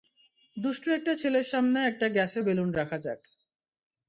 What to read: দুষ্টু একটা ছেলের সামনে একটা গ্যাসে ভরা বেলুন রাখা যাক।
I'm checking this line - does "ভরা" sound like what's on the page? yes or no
no